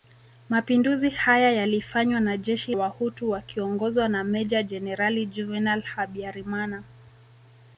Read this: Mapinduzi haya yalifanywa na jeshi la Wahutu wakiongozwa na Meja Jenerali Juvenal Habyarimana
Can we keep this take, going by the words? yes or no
no